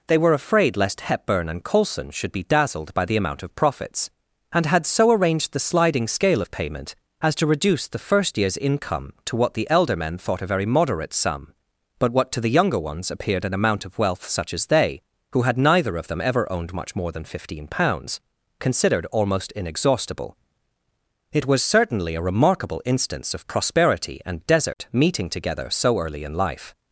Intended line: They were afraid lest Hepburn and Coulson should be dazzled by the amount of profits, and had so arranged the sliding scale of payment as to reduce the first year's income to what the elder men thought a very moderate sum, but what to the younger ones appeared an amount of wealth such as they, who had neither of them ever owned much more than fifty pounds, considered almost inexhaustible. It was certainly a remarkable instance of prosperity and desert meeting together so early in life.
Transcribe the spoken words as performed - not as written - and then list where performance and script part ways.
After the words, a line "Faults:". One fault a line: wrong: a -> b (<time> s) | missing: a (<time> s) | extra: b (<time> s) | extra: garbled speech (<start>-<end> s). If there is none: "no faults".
They were afraid lest Hepburn and Coulson should be dazzled by the amount of profits, and had so arranged the sliding scale of payment as to reduce the first year's income to what the elder men thought a very moderate sum, but what to the younger ones appeared an amount of wealth such as they, who had neither of them ever owned much more than fifteen pounds, considered almost inexhaustible. It was certainly a remarkable instance of prosperity and desert meeting together so early in life.
Faults:
wrong: fifty -> fifteen (17.3 s)